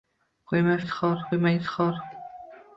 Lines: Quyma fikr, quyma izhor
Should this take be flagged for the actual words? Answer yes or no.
yes